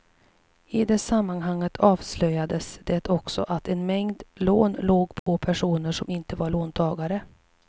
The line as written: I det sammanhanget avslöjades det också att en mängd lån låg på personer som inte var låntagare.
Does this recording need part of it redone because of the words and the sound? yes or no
yes